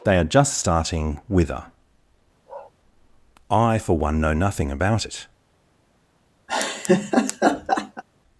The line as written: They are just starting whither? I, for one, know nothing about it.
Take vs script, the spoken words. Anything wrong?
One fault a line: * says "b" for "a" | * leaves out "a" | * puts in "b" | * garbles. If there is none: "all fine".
all fine